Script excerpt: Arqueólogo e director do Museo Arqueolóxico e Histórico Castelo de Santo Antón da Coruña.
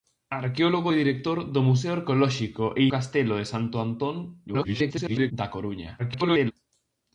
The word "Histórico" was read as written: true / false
false